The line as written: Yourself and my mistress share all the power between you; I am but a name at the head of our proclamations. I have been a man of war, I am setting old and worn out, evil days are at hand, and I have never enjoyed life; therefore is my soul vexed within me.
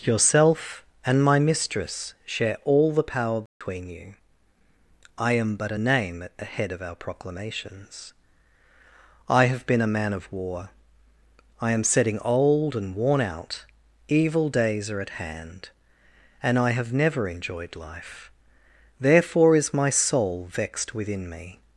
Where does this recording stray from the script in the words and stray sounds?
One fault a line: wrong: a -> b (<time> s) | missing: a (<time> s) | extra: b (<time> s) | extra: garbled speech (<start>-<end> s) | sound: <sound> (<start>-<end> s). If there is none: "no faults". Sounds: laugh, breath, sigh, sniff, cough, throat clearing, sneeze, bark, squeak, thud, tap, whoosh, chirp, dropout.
sound: dropout (3.5-3.6 s)